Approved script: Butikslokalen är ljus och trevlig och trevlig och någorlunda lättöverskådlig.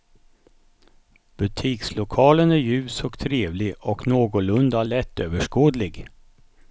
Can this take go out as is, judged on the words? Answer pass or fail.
fail